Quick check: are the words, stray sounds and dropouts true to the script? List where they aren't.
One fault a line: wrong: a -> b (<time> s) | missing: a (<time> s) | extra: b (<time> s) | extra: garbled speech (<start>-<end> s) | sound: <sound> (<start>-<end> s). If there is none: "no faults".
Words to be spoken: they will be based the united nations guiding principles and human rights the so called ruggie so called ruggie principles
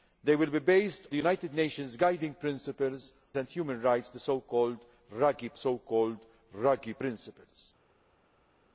no faults